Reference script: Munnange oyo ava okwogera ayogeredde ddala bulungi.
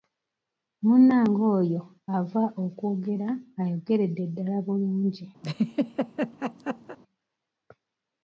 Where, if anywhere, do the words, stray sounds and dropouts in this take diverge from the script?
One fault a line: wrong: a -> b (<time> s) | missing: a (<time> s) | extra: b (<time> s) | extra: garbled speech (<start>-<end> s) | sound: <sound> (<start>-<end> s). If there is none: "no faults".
sound: laugh (5.4-7.0 s)